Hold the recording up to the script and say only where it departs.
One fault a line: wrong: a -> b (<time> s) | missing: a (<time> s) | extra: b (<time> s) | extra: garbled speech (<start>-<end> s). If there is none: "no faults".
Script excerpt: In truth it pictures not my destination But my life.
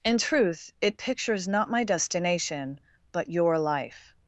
wrong: my -> your (3.3 s)